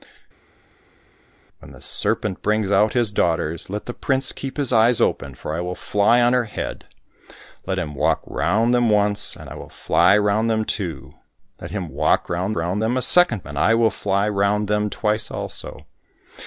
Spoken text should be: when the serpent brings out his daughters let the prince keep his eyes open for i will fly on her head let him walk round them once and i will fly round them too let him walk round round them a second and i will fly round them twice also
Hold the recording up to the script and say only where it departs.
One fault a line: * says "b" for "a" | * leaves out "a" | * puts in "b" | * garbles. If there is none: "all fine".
all fine